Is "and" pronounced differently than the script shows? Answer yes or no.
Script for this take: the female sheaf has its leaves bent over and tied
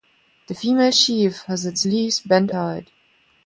yes